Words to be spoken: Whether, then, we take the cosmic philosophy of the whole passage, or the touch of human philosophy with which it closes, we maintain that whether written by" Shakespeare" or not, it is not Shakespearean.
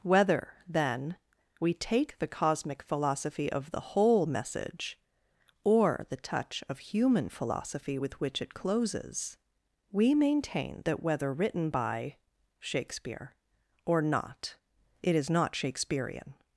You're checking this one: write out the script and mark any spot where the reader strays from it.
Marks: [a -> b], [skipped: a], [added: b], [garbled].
Whether, then, we take the cosmic philosophy of the whole [passage, -> message] or the touch of human philosophy with which it closes, we maintain that whether written by" Shakespeare" or not, it is not Shakespearean.